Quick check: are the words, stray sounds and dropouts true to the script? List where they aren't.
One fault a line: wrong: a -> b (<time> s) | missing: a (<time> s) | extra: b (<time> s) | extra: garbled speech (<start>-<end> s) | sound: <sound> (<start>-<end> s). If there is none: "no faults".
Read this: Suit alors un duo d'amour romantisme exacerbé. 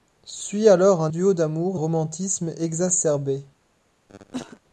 sound: cough (4.1-4.6 s)